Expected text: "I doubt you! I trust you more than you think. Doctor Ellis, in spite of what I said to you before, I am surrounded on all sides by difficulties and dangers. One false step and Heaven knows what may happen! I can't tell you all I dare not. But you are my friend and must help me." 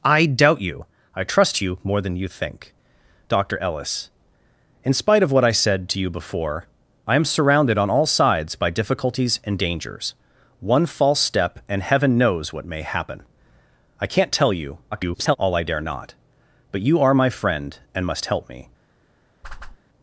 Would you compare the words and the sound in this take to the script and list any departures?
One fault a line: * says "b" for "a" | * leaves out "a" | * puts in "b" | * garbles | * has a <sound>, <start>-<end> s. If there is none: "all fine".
* garbles
* has a whoosh, 19.4-19.8 s